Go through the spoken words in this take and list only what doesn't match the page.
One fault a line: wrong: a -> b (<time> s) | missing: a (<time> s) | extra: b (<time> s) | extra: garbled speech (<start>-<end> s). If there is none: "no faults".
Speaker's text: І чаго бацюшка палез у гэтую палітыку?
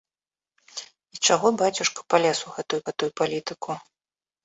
extra: гэтую (2.9 s)